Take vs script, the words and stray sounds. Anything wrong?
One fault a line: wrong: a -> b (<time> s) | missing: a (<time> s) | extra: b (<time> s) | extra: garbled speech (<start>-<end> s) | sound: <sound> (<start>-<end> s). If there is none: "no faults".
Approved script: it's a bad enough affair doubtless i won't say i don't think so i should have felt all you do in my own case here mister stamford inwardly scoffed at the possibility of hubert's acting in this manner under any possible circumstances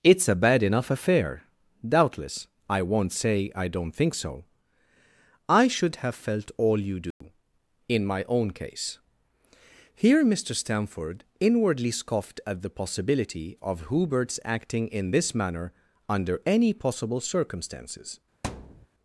sound: dropout (7.1-7.2 s)
sound: thud (18.4-18.9 s)